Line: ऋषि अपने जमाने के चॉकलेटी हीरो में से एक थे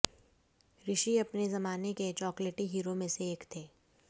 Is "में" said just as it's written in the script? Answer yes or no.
yes